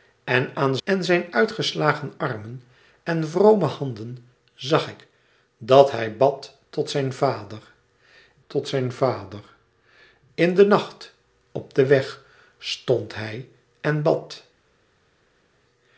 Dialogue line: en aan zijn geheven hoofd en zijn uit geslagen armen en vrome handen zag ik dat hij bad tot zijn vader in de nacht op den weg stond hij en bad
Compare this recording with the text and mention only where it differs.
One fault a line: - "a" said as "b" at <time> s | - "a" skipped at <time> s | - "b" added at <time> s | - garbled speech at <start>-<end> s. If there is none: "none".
- "zijn geheven hoofd" skipped at 0.8 s
- "tot zijn vader" added at 8.5 s